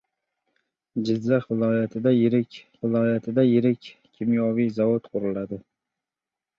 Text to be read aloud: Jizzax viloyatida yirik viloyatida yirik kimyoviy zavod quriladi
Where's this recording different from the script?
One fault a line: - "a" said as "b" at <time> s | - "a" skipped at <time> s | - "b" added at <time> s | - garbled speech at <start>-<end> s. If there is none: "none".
none